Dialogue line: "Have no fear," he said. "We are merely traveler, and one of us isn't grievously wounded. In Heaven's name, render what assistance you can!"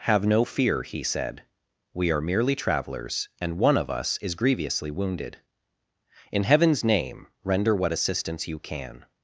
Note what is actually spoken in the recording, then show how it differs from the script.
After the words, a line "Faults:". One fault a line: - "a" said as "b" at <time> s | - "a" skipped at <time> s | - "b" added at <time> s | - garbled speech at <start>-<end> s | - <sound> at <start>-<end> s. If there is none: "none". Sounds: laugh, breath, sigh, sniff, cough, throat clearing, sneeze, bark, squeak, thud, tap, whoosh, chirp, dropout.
"Have no fear," he said. "We are merely travelers, and one of us is grievously wounded. In Heaven's name, render what assistance you can!"
Faults:
- "traveler" said as "travelers" at 2.5 s
- "isn't" said as "is" at 4.2 s